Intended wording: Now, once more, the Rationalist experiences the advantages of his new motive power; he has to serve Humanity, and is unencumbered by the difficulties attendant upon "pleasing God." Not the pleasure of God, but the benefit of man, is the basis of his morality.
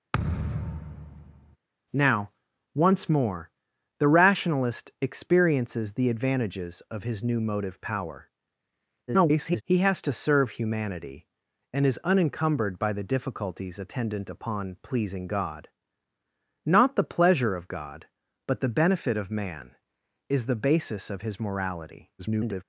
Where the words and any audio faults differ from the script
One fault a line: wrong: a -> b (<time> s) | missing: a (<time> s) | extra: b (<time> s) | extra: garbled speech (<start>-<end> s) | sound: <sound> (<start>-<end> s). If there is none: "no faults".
sound: thud (0.1-1.6 s)
extra: garbled speech (9.1-9.6 s)
extra: garbled speech (22.2-22.6 s)